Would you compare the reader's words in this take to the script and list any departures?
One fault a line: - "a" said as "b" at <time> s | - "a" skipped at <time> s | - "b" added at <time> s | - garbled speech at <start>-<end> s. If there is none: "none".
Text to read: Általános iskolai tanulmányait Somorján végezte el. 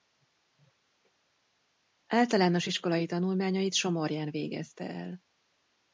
none